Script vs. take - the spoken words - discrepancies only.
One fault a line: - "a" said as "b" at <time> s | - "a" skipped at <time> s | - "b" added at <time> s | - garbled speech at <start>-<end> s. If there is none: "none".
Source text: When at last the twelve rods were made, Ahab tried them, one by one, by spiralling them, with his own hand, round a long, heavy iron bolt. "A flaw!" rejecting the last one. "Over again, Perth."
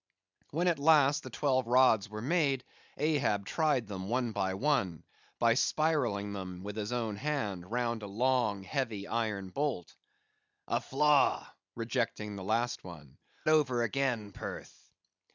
none